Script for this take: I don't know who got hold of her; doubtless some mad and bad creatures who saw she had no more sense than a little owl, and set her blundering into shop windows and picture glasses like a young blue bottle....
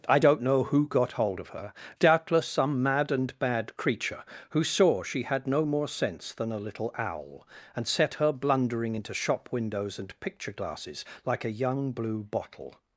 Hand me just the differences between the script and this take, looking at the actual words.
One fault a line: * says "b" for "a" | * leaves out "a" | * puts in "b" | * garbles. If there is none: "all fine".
* says "creature" for "creatures"